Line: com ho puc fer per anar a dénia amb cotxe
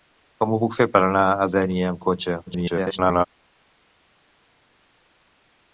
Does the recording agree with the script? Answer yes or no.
no